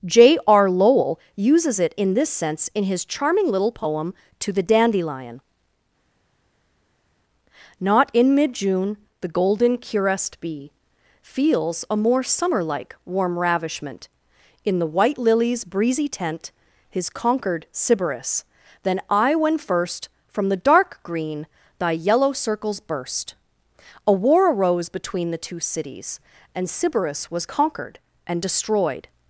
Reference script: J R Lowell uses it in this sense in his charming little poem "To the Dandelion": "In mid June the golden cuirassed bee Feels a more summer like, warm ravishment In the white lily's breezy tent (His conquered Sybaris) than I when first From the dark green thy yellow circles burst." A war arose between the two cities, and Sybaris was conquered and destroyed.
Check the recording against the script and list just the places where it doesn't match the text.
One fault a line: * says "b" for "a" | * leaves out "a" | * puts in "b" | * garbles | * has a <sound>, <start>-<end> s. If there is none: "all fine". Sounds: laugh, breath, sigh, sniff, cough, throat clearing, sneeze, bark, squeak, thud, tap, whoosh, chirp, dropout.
* puts in "Not"